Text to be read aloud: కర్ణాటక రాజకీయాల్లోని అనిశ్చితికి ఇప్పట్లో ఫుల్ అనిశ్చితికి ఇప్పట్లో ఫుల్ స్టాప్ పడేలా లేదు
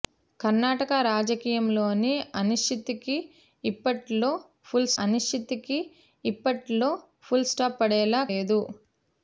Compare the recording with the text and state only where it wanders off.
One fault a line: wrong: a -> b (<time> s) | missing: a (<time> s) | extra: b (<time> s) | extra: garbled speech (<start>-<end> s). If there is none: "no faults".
no faults